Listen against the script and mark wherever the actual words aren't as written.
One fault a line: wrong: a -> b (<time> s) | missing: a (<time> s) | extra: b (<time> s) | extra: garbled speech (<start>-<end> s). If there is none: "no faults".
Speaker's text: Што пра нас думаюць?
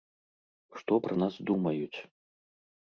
no faults